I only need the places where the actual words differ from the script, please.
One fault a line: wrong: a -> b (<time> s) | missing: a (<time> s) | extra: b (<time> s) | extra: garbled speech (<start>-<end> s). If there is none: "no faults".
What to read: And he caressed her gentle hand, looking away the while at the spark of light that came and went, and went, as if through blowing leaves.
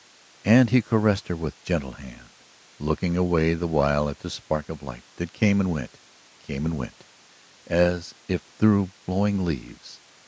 extra: with (1.4 s)
extra: came (6.4 s)